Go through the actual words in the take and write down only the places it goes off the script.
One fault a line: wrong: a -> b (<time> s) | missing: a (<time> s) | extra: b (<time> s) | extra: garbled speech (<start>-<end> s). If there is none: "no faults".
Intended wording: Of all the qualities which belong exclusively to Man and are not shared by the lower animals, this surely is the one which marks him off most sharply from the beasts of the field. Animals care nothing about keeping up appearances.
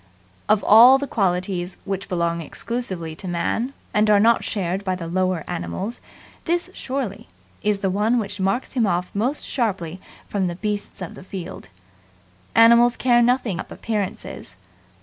missing: about keeping (13.6 s)